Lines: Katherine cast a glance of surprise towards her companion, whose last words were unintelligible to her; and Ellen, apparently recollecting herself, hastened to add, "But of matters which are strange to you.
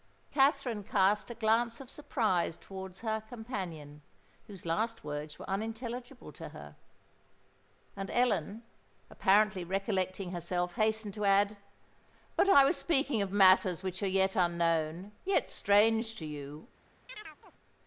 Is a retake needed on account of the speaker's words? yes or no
yes